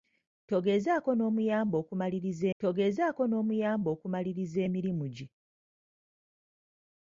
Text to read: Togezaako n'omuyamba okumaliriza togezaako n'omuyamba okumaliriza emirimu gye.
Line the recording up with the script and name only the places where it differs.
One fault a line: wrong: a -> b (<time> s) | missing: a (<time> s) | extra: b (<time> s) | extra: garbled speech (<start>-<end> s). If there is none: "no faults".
no faults